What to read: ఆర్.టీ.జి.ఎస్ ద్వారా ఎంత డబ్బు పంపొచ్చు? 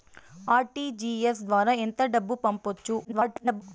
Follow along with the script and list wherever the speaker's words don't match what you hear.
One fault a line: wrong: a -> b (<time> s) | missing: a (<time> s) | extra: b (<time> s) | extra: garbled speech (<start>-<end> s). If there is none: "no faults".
extra: garbled speech (3.0-3.6 s)